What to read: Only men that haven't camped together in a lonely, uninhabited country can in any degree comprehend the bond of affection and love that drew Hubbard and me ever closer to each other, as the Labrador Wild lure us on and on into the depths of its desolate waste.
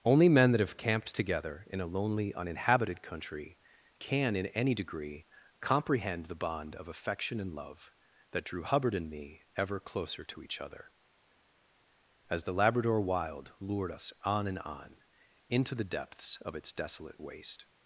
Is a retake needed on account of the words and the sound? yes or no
yes